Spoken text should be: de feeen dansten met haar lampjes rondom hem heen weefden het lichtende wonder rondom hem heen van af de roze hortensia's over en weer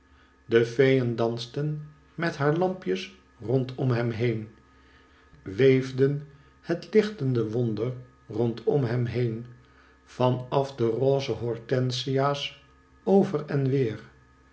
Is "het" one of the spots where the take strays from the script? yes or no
no